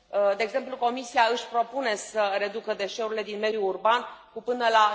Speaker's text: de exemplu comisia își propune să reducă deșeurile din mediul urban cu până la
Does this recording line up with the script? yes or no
yes